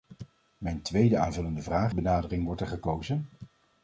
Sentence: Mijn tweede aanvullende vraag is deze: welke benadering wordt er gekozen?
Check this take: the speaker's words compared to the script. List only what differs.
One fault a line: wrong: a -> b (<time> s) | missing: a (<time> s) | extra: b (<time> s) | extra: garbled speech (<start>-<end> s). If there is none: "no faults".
missing: is deze welke (1.9 s)